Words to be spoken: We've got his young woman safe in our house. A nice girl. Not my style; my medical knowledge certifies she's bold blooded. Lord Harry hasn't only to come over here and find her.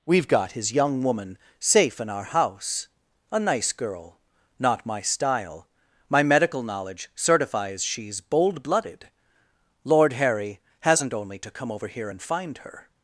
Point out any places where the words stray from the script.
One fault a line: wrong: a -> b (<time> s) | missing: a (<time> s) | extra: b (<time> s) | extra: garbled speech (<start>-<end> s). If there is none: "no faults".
no faults